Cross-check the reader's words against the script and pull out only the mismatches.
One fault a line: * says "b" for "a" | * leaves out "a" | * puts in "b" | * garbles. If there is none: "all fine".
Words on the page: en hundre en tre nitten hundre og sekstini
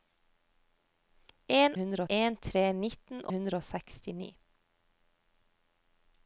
all fine